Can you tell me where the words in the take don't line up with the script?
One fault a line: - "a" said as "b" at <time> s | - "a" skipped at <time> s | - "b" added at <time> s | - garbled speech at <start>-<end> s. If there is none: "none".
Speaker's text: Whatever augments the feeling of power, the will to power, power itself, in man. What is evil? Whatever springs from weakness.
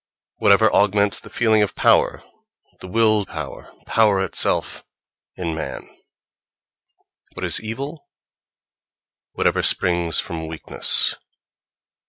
- "to" skipped at 3.3 s